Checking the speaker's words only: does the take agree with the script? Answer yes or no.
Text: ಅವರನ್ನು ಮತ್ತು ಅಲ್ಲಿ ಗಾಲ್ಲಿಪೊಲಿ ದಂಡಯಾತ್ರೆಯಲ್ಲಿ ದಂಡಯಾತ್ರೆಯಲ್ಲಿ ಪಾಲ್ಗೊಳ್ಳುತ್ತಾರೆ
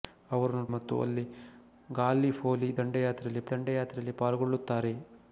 yes